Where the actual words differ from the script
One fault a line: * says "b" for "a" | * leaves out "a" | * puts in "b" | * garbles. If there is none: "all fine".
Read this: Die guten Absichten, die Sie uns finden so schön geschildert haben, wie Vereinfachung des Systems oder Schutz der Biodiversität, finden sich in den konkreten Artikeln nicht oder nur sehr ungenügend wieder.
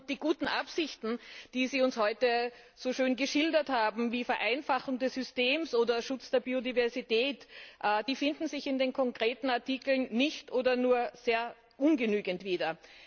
* says "heute" for "finden"